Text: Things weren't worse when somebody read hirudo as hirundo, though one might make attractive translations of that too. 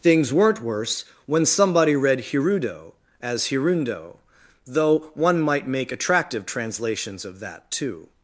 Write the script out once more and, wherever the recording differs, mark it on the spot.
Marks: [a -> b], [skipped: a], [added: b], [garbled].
Things weren't worse when somebody read hirudo as hirundo, though one might make attractive translations of that too.